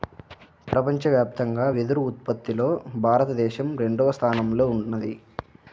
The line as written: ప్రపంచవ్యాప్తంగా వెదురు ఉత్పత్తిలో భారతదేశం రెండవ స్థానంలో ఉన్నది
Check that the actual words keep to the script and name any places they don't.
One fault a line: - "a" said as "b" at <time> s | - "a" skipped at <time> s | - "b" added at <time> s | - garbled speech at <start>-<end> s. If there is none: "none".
none